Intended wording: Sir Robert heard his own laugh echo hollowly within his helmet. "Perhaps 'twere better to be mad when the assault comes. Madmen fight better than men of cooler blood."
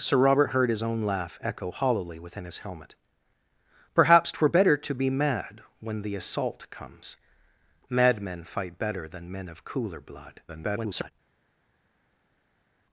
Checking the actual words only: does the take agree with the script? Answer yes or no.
no